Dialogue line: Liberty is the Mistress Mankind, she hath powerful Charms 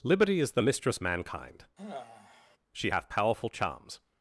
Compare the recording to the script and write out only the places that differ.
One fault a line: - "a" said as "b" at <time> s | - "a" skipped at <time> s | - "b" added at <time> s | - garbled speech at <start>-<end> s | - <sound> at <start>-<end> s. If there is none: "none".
- sigh at 1.8-2.6 s